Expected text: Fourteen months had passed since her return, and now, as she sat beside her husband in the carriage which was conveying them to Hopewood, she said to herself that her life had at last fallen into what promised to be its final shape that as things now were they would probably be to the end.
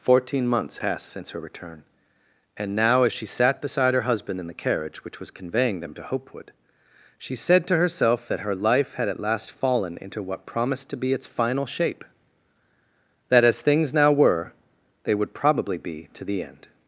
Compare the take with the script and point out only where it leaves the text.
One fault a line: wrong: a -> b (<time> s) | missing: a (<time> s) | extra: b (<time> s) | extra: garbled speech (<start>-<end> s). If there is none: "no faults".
missing: had (0.8 s)